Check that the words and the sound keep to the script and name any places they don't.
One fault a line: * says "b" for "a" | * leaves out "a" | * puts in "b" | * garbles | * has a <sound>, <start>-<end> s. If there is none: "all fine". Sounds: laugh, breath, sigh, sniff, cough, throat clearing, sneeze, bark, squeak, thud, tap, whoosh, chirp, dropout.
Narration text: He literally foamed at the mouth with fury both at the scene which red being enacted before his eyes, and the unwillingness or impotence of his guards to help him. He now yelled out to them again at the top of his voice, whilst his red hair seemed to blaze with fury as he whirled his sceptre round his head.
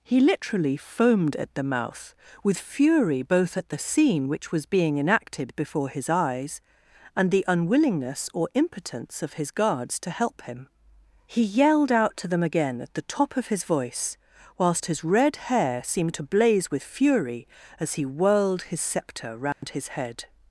* says "was" for "red"
* leaves out "now"
* has a dropout, 19.5-19.6 s